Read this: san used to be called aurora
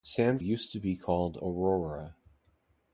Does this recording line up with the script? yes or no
yes